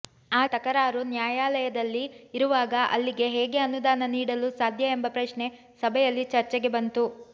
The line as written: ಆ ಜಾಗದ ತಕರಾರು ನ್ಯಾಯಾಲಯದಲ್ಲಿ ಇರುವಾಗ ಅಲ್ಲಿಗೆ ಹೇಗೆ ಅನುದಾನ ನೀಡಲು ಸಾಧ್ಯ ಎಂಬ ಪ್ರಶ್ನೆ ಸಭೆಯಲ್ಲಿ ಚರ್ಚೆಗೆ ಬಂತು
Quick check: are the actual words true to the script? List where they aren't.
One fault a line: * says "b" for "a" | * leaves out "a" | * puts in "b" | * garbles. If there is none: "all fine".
* leaves out "ಜಾಗದ"